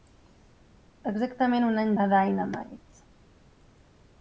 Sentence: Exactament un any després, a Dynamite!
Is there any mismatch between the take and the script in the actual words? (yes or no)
yes